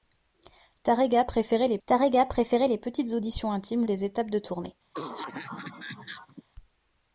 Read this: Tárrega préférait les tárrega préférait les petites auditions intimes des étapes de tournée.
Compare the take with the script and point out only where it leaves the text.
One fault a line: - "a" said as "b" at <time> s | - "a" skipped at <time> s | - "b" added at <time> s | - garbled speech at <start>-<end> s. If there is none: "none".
none